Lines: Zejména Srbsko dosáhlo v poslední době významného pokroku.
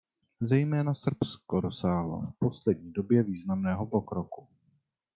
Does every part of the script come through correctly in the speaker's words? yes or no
yes